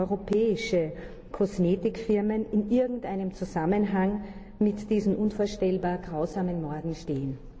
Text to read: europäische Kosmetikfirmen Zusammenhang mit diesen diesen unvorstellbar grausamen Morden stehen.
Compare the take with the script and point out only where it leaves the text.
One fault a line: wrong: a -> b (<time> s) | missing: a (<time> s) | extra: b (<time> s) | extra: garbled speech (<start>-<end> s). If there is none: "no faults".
extra: in irgendeinem (2.5 s)
missing: diesen (5.2 s)